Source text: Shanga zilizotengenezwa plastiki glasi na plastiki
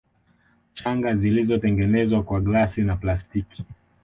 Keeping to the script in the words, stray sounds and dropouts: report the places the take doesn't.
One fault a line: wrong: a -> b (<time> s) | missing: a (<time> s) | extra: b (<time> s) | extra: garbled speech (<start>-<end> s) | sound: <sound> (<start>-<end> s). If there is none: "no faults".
wrong: plastiki -> kwa (2.2 s)